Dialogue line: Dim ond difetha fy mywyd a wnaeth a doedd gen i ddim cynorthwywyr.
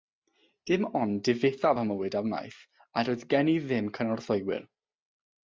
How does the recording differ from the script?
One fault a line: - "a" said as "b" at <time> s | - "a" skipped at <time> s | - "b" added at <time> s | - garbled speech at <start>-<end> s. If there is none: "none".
none